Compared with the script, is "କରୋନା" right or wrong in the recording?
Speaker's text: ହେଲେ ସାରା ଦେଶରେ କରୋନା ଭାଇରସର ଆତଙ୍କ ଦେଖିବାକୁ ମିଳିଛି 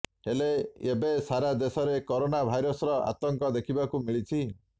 right